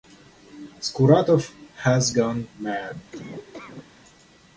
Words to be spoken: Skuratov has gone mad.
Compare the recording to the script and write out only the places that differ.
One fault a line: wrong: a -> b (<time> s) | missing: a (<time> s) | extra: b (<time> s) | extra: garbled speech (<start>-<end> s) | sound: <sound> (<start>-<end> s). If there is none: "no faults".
sound: laugh (3.1-3.9 s)